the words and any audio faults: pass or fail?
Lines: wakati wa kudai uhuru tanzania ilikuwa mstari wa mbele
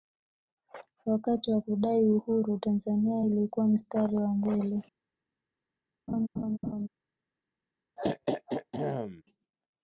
fail